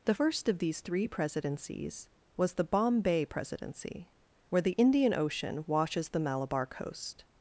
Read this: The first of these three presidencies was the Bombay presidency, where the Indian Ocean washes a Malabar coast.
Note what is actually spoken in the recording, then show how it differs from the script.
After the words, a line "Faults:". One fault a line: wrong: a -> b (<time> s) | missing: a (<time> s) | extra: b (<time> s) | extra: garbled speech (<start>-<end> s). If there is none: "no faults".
The first of these three presidencies was the Bombay presidency, where the Indian Ocean washes the Malabar coast.
Faults:
wrong: a -> the (6.1 s)